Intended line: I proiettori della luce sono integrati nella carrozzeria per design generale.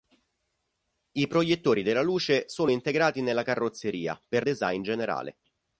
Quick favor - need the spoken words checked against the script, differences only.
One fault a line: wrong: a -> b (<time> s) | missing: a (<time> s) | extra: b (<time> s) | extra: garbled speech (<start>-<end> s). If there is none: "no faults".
no faults